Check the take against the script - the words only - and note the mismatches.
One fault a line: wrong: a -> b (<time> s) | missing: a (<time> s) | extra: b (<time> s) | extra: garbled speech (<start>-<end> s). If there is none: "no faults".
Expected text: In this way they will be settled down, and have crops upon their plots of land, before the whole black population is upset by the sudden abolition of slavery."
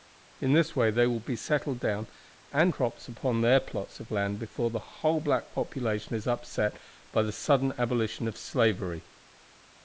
missing: have (2.7 s)